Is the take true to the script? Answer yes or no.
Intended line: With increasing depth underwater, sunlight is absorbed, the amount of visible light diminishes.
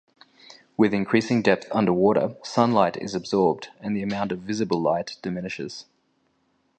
no